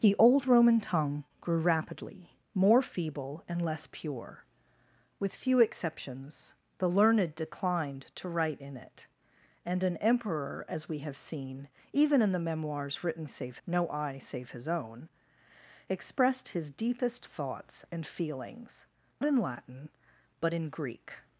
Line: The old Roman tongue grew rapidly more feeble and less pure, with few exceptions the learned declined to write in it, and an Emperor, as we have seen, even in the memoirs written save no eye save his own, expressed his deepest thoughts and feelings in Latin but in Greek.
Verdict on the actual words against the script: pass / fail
pass